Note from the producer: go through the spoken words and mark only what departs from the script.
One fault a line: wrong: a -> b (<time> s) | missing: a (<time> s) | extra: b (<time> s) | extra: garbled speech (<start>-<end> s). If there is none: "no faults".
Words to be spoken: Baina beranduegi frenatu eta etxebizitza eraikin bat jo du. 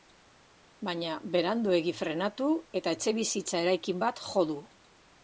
no faults